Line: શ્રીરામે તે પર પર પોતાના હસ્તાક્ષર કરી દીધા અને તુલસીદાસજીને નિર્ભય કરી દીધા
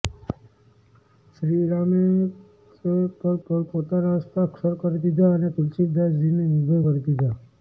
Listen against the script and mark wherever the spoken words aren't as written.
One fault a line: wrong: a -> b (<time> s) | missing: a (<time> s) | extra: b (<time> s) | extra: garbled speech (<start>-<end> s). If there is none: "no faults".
no faults